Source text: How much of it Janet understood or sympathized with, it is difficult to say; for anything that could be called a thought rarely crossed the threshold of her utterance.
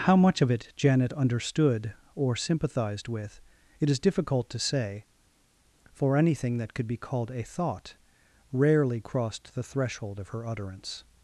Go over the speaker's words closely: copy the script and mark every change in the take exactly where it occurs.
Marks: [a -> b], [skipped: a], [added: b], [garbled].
How much of it Janet understood or sympathized with, it is difficult to say; for anything that could be called a thought rarely crossed the threshold of her utterance.